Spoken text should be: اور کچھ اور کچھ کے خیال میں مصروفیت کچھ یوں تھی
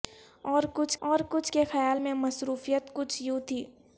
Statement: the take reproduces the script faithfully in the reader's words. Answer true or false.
true